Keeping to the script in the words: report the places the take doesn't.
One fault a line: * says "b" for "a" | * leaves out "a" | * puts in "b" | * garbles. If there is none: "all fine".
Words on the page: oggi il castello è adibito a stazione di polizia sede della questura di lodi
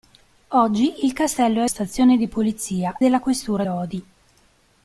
* leaves out "adibito"
* leaves out "sede"
* leaves out "di"